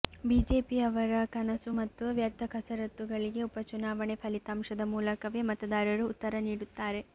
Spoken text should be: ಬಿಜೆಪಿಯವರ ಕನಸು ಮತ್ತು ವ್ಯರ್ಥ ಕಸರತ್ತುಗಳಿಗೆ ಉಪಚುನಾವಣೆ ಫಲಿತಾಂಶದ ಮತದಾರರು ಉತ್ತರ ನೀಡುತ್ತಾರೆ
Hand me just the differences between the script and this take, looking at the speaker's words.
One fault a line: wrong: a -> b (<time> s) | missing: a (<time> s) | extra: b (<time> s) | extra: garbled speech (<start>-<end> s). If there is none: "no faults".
extra: ಮೂಲಕವೇ (4.9 s)